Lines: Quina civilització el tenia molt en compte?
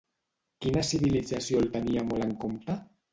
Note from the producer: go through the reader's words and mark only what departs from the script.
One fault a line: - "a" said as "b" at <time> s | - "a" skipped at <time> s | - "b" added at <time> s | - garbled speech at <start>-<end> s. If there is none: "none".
none